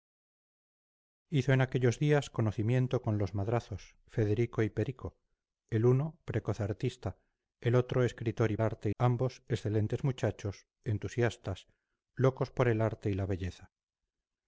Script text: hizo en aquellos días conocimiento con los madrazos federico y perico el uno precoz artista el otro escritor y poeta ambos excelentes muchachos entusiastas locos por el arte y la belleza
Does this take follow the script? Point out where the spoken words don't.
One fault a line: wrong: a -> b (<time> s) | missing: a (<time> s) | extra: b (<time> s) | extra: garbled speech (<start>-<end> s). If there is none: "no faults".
wrong: poeta -> arte (8.6 s)